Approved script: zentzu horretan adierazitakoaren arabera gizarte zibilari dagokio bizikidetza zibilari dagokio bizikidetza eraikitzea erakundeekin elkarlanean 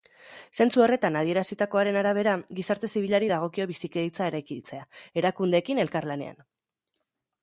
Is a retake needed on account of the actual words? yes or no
yes